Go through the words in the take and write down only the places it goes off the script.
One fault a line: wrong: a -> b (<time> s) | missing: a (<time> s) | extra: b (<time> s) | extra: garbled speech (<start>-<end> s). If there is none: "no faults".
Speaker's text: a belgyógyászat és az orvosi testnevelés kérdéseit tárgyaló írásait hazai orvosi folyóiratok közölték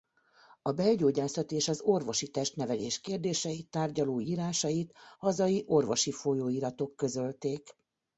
no faults